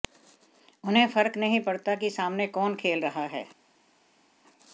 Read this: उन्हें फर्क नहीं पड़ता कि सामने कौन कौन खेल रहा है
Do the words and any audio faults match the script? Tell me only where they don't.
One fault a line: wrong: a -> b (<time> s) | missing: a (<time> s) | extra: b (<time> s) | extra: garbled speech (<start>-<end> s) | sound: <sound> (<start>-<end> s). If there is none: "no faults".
missing: कौन (2.8 s)